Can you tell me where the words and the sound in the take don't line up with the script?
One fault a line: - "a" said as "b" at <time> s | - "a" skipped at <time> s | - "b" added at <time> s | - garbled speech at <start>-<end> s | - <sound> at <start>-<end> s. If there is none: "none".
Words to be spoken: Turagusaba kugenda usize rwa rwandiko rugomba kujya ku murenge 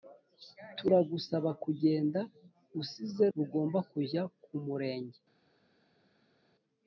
- "rwa rwandiko" skipped at 3.2 s